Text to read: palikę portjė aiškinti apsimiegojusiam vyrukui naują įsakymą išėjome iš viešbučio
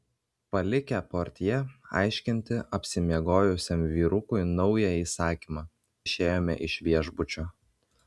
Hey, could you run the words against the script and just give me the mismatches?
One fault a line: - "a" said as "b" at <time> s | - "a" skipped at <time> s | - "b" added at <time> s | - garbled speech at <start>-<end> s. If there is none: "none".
none